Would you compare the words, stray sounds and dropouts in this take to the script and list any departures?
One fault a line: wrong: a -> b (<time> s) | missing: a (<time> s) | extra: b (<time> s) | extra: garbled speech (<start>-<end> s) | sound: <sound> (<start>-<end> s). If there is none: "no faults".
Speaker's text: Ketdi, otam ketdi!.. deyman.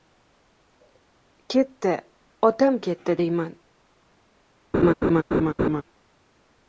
sound: laugh (4.7-5.8 s)